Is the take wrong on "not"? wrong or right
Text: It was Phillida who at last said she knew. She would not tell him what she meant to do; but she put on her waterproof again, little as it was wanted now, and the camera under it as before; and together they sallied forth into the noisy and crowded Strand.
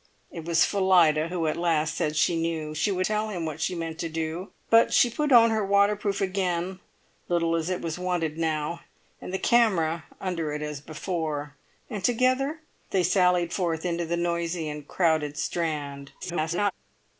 wrong